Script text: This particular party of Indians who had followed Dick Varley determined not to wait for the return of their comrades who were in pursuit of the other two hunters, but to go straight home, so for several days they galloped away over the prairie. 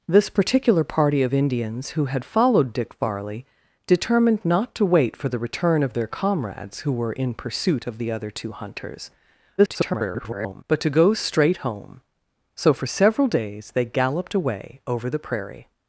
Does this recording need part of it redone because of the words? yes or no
yes